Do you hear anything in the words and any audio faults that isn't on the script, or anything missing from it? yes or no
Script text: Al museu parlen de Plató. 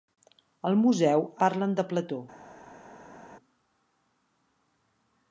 no